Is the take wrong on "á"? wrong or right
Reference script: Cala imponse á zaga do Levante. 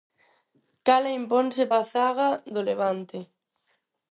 right